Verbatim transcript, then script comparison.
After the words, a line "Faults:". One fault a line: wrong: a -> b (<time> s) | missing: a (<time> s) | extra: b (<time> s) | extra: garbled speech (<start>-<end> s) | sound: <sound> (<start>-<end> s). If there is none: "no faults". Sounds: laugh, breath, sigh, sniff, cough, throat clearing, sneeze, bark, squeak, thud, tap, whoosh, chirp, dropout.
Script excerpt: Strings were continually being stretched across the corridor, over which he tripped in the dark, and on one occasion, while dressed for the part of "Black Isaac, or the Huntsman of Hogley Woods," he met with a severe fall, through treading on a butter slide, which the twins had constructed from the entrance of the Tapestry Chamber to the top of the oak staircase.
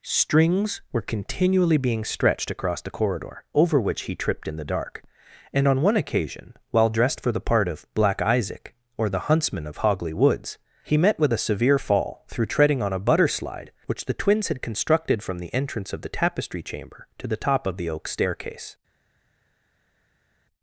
Strings were continually being stretched across the corridor, over which he tripped in the dark, and on one occasion, while dressed for the part of "Black Isaac, or the Huntsman of Hogley Woods," he met with a severe fall, through treading on a butter slide, which the twins had constructed from the entrance of the Tapestry Chamber to the top of the oak staircase.
Faults:
no faults